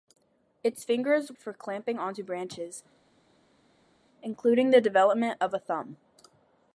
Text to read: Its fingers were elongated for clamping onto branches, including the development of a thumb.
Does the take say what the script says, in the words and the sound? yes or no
no